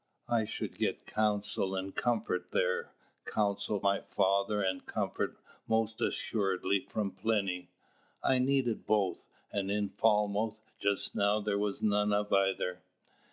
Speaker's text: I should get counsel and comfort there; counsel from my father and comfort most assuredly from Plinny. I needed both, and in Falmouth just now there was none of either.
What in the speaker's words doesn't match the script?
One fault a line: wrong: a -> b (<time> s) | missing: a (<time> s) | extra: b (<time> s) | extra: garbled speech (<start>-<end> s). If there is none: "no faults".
missing: from (3.8 s)